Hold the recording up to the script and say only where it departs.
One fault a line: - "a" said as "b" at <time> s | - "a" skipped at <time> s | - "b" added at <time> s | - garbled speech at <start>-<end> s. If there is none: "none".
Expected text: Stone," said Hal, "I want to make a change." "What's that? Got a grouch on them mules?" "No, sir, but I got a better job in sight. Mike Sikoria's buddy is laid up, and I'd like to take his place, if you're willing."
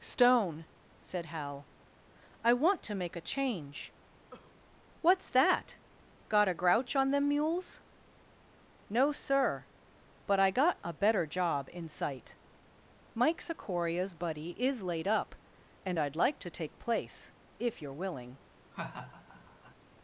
- "his" skipped at 16.8 s